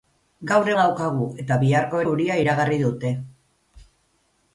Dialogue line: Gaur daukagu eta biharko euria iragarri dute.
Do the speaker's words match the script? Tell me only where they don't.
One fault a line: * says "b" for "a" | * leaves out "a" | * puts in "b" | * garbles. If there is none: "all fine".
all fine